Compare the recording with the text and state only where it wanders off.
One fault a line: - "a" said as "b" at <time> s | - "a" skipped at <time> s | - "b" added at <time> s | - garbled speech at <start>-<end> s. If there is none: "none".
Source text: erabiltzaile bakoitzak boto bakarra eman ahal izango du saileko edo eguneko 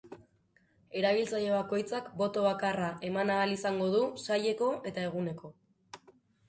- "edo" said as "eta" at 4.9 s